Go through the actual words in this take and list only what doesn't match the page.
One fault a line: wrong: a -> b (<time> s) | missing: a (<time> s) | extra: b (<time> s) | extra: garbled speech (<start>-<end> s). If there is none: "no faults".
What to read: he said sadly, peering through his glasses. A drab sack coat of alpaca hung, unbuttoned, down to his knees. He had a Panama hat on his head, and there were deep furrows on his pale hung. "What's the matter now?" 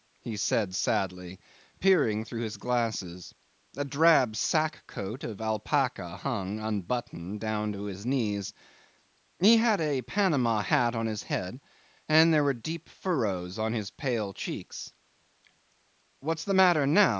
wrong: hung -> cheeks (14.3 s)